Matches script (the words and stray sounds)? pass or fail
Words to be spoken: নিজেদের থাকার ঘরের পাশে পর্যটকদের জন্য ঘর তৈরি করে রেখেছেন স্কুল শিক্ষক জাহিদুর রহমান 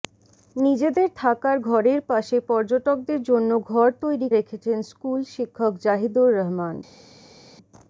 fail